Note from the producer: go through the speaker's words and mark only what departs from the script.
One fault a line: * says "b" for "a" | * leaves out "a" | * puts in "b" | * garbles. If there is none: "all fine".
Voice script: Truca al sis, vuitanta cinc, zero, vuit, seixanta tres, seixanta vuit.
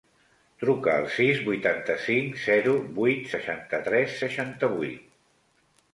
all fine